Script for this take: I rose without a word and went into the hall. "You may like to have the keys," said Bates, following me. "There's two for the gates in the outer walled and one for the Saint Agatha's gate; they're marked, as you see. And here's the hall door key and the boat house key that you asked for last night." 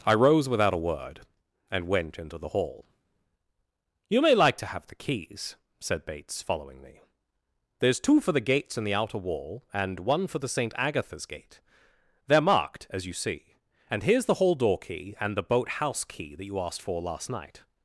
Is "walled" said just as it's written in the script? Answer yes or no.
no